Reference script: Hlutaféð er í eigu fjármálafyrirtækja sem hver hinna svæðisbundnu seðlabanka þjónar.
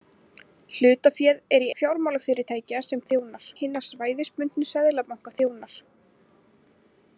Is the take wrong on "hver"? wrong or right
wrong